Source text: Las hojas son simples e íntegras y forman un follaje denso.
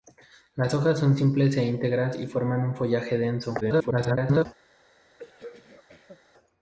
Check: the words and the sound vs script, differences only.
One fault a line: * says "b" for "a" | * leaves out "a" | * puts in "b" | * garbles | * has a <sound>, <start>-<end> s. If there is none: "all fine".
* garbles
* has a throat clearing, 5.2-6.2 s